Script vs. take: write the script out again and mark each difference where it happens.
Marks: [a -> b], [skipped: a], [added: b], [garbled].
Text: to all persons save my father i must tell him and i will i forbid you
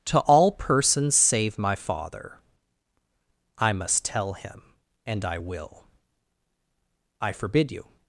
to all persons save my father i must tell him and i will i forbid you